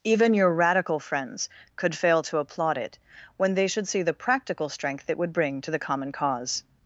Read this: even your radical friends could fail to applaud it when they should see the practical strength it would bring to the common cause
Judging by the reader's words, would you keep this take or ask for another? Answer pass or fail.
pass